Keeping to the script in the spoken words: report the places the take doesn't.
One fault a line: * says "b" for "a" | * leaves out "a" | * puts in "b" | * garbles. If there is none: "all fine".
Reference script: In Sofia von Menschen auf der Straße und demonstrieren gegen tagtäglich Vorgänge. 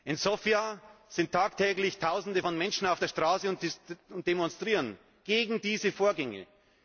* puts in "sind tagtäglich Tausende"
* says "diese" for "tagtäglich"